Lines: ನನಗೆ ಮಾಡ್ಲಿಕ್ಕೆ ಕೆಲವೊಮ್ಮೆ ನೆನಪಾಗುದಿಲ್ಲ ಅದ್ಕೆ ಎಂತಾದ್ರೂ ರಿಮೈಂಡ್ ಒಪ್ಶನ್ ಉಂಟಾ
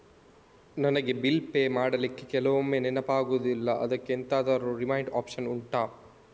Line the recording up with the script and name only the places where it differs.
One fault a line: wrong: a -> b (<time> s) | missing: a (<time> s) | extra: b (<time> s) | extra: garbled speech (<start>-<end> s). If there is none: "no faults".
extra: ಬಿಲ್ ಪೇ (1.1 s)